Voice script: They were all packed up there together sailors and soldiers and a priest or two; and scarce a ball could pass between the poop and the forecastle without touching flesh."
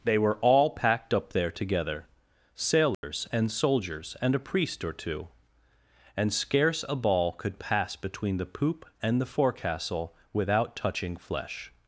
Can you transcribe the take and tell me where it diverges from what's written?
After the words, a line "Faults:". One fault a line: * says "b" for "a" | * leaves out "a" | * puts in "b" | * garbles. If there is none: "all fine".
They were all packed up there together sailors and soldiers and a priest or two; and scarce a ball could pass between the poop and the forecastle without touching flesh."
Faults:
all fine